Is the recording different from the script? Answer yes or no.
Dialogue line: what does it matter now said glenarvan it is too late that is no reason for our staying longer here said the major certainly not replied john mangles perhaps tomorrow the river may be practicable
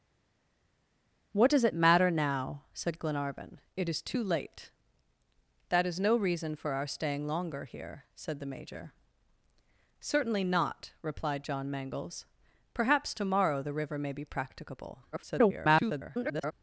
yes